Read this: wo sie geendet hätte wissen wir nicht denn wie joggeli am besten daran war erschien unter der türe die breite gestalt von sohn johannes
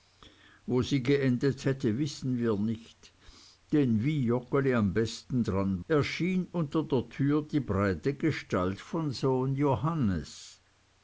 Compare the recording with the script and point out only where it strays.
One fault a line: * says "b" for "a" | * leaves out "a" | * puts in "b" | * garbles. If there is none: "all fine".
* leaves out "war"